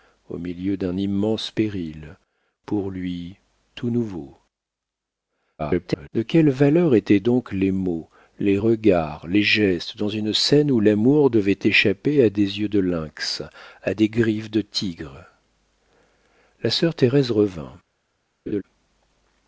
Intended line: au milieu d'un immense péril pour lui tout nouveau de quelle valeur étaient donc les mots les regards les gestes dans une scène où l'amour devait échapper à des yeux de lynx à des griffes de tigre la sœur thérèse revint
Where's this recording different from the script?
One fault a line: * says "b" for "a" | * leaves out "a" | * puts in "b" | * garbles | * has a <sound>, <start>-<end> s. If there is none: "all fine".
* garbles
* has a laugh, 18.5-18.6 s